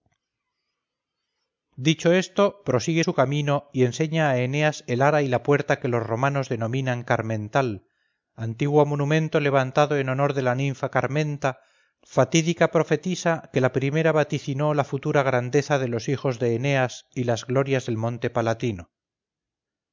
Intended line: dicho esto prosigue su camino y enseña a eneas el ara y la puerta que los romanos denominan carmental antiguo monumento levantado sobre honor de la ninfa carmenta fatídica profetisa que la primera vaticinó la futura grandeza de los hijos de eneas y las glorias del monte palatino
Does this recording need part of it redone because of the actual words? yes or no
yes